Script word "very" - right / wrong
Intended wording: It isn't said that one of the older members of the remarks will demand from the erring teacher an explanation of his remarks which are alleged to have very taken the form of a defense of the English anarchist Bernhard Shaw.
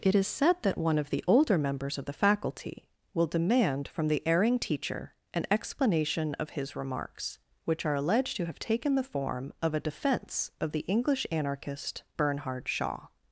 wrong